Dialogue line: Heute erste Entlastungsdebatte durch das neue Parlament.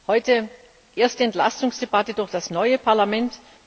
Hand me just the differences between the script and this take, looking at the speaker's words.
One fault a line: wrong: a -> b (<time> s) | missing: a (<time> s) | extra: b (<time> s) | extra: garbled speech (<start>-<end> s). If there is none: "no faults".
no faults